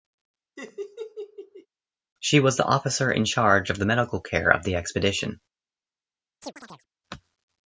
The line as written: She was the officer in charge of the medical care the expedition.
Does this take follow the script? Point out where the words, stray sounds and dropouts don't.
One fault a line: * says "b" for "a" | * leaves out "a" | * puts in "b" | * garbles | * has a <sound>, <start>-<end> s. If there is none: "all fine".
* has a laugh, 0.6-1.7 s
* puts in "of"
* has a chirp, 6.4-6.9 s